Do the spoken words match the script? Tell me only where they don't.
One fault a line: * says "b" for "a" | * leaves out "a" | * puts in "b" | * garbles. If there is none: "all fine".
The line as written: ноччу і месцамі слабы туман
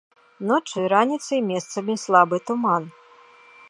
* puts in "раніцай"